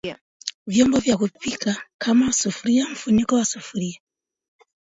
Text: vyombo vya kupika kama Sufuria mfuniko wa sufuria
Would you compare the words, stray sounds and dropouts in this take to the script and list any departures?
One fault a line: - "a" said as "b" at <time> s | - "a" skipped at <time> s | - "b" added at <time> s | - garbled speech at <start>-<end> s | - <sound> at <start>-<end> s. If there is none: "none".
none